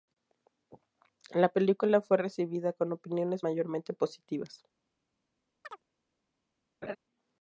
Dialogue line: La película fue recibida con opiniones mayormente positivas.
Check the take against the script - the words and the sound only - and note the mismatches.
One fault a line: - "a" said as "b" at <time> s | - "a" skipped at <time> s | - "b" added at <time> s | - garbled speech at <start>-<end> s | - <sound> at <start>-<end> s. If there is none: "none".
- chirp at 5.6-5.8 s
- laugh at 6.8-7.0 s